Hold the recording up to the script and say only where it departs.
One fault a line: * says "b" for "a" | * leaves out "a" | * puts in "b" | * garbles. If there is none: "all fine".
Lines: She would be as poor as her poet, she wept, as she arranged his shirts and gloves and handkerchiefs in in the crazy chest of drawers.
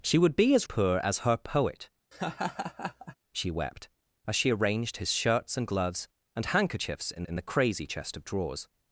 all fine